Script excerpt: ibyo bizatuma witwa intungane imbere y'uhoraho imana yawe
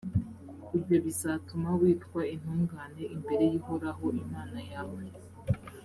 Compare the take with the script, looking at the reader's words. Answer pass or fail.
pass